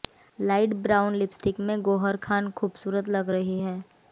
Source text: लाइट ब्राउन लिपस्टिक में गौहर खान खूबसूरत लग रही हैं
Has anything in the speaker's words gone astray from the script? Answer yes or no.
no